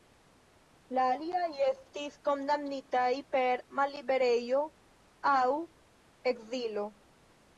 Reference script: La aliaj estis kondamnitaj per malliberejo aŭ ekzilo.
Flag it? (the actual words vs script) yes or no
no